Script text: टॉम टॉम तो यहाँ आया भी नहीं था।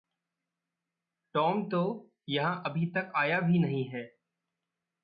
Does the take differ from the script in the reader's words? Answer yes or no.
yes